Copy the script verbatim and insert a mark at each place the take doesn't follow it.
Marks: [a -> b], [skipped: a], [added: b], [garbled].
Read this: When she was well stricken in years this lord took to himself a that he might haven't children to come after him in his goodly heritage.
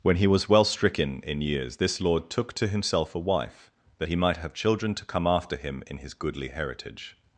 When [she -> he] was well stricken in years this lord took to himself a [added: wife] that he might [haven't -> have] children to come after him in his goodly heritage.